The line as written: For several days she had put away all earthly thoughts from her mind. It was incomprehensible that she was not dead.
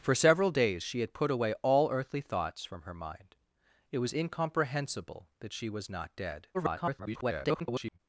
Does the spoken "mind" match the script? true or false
true